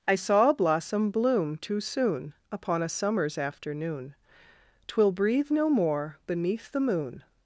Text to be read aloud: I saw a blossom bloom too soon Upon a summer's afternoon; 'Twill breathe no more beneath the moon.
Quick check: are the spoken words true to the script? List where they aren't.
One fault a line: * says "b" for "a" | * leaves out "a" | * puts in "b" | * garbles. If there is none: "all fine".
all fine